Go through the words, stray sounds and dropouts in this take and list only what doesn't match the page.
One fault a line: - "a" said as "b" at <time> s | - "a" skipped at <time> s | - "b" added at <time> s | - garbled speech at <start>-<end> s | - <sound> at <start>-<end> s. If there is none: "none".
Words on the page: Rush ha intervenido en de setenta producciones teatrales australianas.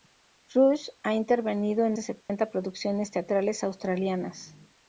- dropout at 2.2-2.3 s